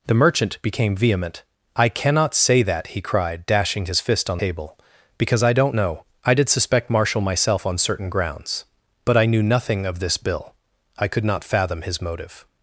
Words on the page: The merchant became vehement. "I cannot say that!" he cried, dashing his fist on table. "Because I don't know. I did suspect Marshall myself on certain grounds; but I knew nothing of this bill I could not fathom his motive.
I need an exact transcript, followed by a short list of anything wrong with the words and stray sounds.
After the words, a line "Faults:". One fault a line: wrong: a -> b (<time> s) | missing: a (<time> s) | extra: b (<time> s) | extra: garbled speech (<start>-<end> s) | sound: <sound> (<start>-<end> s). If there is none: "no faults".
The merchant became vehement. "I cannot say that!" he cried, dashing his fist on table. "Because I don't know. I did suspect Marshall myself on certain grounds; but I knew nothing of this bill I could not fathom his motive.
Faults:
no faults